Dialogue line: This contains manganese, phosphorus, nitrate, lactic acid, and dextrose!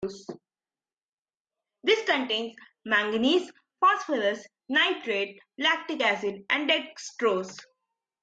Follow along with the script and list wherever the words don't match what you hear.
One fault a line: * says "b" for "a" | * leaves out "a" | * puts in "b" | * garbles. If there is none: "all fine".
all fine